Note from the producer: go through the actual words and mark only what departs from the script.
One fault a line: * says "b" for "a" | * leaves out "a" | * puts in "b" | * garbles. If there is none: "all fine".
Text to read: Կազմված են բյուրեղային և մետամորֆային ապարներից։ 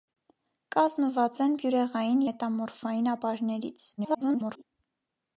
* leaves out "և"
* garbles